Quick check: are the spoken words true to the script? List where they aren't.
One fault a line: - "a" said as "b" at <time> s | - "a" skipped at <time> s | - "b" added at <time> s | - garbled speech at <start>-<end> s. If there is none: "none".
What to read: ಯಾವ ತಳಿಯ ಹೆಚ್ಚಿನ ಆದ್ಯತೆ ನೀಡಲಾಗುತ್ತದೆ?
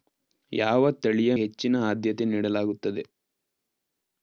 none